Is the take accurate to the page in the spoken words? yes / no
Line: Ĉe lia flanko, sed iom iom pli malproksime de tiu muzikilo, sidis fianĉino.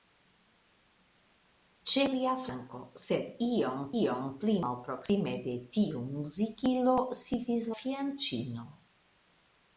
yes